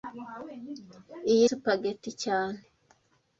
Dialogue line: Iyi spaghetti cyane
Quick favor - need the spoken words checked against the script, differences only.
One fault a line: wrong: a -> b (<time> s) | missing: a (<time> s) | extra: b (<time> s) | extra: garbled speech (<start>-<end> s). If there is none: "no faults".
no faults